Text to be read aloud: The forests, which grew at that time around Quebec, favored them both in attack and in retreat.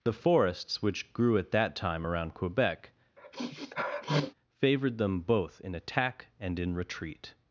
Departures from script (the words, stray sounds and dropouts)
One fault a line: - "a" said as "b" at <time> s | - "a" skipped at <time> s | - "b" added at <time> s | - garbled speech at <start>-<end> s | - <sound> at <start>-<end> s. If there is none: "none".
- sniff at 3.2-4.3 s